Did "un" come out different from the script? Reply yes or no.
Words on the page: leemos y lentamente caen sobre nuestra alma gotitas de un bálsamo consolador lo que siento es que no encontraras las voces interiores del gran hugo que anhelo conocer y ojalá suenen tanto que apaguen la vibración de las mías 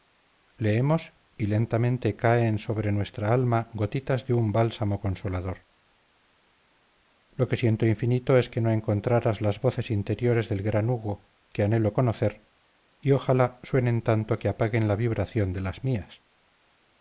no